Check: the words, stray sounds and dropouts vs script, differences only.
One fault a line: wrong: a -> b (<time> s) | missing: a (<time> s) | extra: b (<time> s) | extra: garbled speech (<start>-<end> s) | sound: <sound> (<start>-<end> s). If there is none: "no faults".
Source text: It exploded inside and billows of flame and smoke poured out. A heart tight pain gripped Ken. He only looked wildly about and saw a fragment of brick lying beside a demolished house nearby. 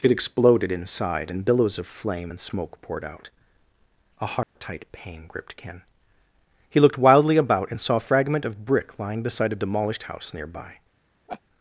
sound: dropout (4.4-4.6 s)
missing: only (6.8 s)
sound: laugh (11.3-11.4 s)